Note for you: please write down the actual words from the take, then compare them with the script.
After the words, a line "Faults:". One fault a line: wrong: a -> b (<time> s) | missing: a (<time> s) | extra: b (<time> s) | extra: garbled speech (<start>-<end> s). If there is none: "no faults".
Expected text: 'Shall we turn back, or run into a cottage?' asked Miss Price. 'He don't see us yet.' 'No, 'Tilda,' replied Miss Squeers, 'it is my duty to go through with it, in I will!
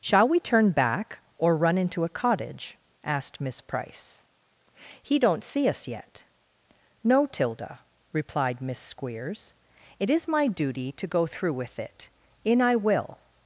'Shall we turn back, or run into a cottage?' asked Miss Price. 'He don't see us yet.' 'No, 'Tilda,' replied Miss Squeers, 'it is my duty to go through with it, in I will!
Faults:
no faults